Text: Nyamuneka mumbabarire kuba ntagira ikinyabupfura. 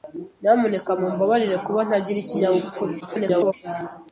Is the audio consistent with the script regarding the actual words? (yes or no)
no